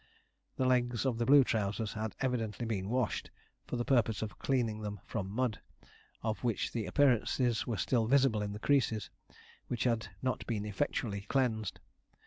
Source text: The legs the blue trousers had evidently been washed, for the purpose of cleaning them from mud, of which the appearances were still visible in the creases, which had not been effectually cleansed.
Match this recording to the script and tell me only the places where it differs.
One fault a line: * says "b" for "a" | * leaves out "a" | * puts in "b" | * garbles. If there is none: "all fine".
* puts in "of"